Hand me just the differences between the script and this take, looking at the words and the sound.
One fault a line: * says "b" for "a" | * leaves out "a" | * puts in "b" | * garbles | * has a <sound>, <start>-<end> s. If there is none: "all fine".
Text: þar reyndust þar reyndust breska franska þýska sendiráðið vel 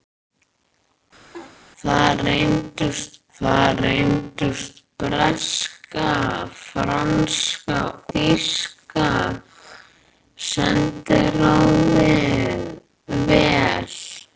* has a laugh, 1.3-1.6 s